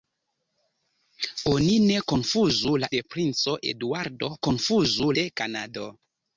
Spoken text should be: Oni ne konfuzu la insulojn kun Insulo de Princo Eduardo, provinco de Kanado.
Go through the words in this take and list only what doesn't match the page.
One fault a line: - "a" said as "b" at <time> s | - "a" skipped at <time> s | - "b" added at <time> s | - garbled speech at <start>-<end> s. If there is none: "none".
- "insulojn kun Insulo" skipped at 2.9 s
- "provinco" said as "konfuzu" at 4.5 s